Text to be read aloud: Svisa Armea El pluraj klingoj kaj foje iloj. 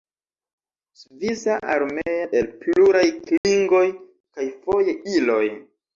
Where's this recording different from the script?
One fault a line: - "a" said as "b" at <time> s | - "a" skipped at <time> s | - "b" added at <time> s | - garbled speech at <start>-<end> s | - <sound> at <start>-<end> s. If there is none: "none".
- dropout at 3.4-3.4 s